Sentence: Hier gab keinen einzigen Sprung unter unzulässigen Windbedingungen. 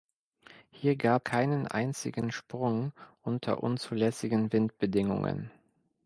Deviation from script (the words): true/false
false